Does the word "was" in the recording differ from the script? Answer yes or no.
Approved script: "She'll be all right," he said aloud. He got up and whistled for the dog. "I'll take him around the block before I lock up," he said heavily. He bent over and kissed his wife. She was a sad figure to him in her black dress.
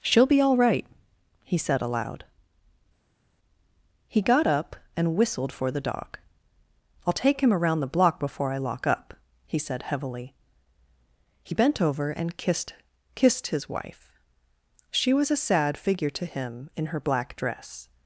no